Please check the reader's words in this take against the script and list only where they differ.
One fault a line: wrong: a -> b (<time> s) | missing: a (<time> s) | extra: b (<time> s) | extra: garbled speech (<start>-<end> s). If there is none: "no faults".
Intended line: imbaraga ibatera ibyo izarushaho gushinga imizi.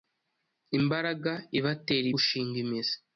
missing: ibyo izarushaho (2.1 s)